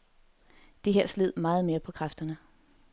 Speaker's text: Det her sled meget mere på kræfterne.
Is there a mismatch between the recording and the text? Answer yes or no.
no